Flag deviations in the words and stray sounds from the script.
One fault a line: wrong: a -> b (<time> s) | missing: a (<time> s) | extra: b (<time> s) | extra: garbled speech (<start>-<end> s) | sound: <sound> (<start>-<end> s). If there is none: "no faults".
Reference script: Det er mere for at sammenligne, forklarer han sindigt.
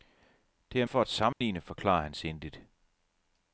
missing: mere (0.8 s)
sound: dropout (1.3-1.4 s)